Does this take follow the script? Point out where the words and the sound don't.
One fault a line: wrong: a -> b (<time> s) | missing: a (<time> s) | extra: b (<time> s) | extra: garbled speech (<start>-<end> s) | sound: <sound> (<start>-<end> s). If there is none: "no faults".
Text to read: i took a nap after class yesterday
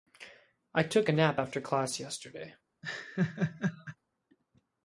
sound: laugh (2.8-4.0 s)